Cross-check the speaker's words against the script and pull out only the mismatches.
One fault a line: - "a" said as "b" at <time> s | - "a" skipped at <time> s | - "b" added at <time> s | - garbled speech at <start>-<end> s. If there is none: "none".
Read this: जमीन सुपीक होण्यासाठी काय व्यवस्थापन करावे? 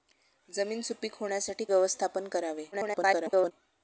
- "काय" skipped at 1.6 s
- garbled speech at 2.7-3.5 s